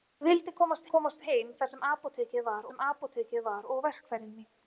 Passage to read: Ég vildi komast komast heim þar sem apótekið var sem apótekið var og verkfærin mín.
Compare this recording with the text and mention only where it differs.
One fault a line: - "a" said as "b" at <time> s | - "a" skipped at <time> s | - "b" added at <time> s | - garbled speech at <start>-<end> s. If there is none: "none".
none